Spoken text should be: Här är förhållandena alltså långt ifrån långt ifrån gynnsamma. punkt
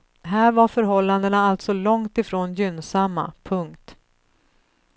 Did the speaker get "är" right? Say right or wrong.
wrong